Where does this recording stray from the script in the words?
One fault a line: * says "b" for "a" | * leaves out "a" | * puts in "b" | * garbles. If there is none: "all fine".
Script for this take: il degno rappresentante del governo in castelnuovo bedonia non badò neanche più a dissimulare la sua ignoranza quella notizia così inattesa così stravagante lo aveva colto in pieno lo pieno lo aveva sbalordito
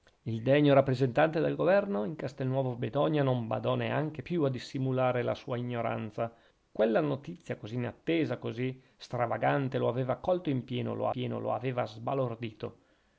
all fine